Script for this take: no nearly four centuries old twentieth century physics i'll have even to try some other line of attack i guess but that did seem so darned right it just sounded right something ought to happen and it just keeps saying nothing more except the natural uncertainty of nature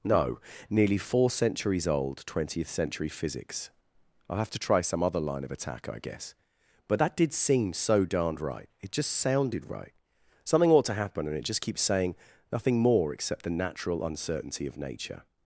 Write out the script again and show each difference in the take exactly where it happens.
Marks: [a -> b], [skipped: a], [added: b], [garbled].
no nearly four centuries old twentieth century physics i'll have [skipped: even] to try some other line of attack i guess but that did seem so darned right it just sounded right something ought to happen and it just keeps saying nothing more except the natural uncertainty of nature